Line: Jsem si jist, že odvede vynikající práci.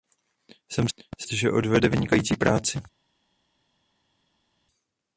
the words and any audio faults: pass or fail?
pass